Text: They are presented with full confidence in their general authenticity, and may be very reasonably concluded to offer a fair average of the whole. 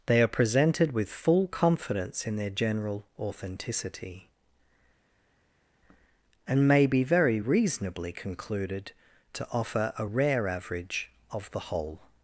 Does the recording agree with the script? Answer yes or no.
no